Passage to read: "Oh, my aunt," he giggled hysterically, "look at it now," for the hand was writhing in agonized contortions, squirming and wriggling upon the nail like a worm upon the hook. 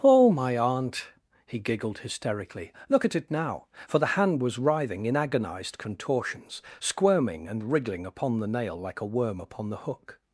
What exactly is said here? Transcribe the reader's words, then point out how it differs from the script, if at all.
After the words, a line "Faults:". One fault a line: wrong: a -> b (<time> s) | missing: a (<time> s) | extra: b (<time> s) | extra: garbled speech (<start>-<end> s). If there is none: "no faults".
"Oh, my aunt," he giggled hysterically, "look at it now," for the hand was writhing in agonized contortions, squirming and wriggling upon the nail like a worm upon the hook.
Faults:
no faults